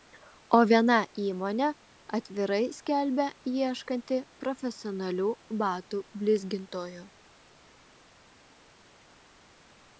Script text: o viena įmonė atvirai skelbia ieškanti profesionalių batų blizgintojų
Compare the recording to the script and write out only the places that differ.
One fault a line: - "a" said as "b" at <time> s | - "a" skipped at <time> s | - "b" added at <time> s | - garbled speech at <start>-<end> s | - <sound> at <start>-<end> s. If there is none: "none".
none